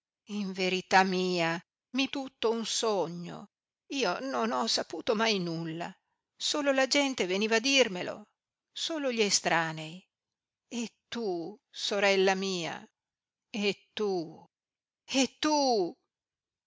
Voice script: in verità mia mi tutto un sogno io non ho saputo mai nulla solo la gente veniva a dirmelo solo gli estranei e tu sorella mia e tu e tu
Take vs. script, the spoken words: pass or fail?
pass